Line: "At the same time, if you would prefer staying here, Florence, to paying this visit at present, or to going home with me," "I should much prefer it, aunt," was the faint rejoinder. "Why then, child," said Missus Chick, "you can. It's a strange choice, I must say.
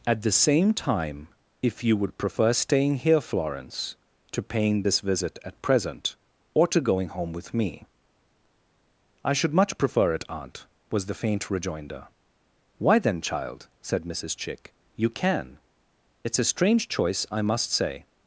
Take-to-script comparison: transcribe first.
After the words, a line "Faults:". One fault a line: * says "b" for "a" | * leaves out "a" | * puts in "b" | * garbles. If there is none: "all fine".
"At the same time, if you would prefer staying here, Florence, to paying this visit at present, or to going home with me," "I should much prefer it, aunt," was the faint rejoinder. "Why then, child," said Missus Chick, "you can. It's a strange choice, I must say.
Faults:
all fine